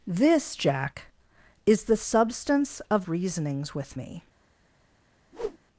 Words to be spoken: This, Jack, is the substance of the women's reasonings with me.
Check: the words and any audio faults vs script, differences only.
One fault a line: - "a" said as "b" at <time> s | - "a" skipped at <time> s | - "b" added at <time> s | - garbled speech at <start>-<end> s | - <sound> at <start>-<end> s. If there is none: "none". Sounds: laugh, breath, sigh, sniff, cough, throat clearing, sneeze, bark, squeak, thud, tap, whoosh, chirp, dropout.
- "the women's" skipped at 3.0 s
- whoosh at 5.3-5.6 s